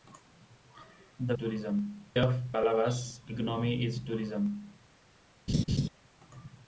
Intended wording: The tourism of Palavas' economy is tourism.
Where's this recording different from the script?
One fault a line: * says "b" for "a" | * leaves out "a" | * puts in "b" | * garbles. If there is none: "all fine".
all fine